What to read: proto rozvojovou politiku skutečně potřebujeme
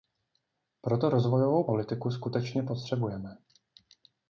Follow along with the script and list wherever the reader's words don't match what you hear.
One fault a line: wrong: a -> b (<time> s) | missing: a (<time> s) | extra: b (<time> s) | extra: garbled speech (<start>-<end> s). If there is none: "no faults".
no faults